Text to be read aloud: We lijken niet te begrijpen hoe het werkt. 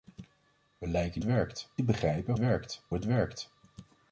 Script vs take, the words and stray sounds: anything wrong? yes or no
yes